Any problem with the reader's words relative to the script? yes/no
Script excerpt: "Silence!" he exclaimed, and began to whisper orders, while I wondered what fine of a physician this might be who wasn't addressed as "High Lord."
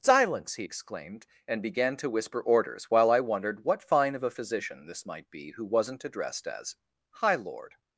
no